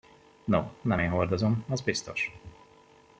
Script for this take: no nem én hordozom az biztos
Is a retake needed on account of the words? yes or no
no